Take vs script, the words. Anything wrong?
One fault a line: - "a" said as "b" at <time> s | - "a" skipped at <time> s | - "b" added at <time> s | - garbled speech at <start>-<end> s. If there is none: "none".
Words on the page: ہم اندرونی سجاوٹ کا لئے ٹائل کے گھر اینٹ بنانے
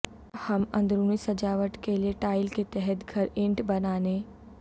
- "کا" said as "کے" at 1.8 s
- "تحت" added at 2.7 s